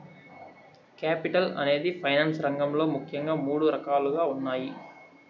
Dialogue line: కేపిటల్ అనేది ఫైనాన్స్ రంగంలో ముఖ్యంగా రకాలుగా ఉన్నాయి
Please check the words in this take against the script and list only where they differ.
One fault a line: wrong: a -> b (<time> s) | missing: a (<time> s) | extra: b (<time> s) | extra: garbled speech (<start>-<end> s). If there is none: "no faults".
extra: మూడు (3.4 s)